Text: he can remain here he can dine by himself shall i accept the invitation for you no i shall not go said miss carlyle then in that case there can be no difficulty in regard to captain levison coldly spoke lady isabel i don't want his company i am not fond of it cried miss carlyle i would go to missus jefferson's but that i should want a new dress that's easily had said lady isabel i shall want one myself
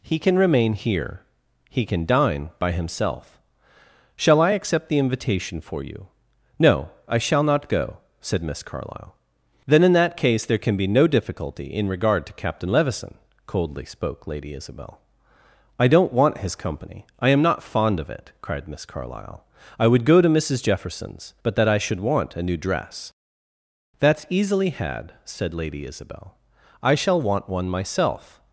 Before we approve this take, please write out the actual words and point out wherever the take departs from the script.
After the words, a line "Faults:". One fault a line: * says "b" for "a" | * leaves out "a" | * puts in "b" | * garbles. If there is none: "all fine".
he can remain here he can dine by himself shall i accept the invitation for you no i shall not go said miss carlyle then in that case there can be no difficulty in regard to captain levison coldly spoke lady isabel i don't want his company i am not fond of it cried miss carlyle i would go to missus jefferson's but that i should want a new dress that's easily had said lady isabel i shall want one myself
Faults:
all fine